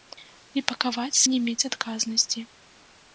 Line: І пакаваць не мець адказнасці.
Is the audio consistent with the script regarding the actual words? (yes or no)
yes